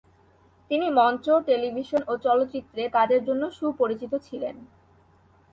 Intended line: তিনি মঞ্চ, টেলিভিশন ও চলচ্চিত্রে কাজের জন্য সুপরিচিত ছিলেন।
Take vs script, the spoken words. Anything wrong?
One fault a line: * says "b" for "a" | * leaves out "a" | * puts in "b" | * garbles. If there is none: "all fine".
all fine